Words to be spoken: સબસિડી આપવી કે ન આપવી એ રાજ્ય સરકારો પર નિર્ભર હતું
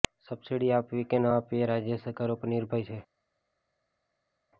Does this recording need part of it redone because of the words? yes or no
yes